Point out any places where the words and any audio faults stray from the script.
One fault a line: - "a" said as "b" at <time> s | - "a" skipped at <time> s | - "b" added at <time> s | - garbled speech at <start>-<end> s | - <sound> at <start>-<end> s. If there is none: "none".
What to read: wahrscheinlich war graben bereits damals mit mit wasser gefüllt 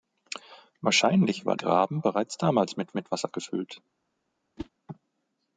- whoosh at 4.6-4.7 s